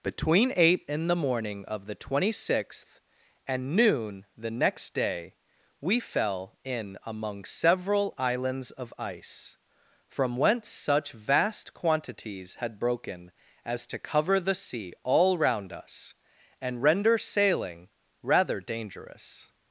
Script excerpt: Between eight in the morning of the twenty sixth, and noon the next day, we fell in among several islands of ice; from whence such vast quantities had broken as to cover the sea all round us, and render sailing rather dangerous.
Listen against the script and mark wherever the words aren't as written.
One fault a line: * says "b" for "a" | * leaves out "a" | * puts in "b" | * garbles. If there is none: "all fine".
all fine